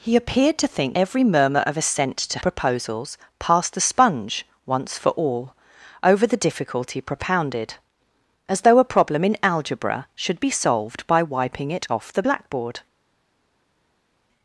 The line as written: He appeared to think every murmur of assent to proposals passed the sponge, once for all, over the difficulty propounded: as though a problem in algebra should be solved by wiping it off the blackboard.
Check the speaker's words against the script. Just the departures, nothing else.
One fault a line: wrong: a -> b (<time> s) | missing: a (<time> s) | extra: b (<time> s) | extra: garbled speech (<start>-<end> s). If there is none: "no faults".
no faults